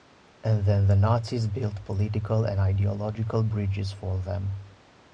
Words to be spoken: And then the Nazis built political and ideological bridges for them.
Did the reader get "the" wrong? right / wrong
right